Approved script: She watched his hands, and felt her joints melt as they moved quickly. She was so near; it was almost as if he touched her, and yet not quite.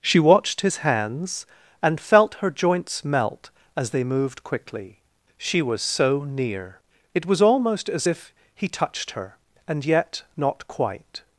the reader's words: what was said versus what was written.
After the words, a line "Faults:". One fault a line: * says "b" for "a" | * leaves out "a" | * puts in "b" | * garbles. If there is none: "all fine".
She watched his hands, and felt her joints melt as they moved quickly. She was so near; it was almost as if he touched her, and yet not quite.
Faults:
all fine